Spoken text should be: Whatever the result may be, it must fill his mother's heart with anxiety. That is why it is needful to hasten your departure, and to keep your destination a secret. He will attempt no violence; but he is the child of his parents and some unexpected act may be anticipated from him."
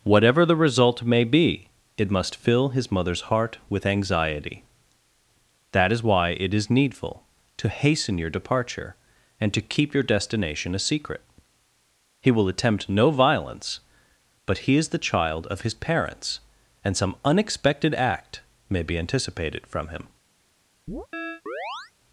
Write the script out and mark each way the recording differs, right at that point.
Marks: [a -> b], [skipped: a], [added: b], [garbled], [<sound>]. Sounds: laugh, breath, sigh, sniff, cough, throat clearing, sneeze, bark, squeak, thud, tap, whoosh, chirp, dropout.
Whatever the result may be, it must fill his mother's heart with anxiety. That is why it is needful to hasten your departure, and to keep your destination a secret. He will attempt no violence; but he is the child of his parents and some unexpected act may be anticipated from him." [chirp]